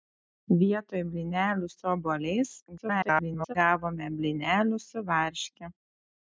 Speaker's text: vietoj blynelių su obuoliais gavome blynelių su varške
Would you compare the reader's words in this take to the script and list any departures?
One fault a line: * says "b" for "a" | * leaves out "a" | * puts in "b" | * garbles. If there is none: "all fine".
* garbles